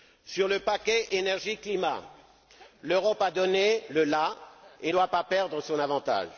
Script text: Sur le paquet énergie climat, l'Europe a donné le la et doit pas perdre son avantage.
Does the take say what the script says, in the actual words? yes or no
yes